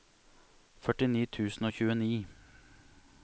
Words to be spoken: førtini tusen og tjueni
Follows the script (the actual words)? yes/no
yes